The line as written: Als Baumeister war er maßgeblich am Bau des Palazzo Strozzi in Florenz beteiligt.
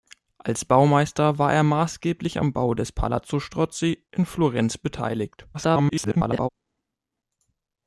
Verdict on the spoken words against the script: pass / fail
fail